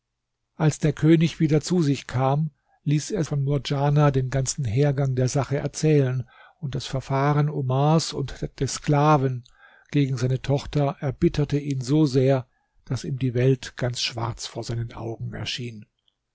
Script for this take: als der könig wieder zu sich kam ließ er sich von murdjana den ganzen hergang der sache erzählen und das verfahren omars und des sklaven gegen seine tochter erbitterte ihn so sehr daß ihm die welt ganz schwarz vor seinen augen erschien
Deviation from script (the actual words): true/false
true